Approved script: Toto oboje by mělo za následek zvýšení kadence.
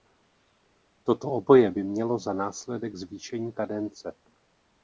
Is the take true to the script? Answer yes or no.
yes